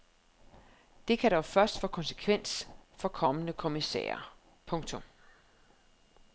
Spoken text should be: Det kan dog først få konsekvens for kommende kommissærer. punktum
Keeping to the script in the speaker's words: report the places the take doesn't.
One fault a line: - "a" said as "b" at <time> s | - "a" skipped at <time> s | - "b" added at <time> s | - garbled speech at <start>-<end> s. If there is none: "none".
none